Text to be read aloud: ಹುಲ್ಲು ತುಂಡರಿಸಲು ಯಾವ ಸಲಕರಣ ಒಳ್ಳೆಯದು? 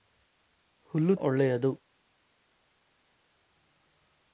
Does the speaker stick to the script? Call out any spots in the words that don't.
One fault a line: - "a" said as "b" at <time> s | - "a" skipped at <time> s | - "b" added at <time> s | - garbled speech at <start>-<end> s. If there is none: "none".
- "ತುಂಡರಿಸಲು ಯಾವ ಸಲಕರಣ" skipped at 1.1 s